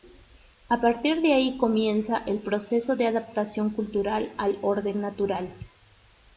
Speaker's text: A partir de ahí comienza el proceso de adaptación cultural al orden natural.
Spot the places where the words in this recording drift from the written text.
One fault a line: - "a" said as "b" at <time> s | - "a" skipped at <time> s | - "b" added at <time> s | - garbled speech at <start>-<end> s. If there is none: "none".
none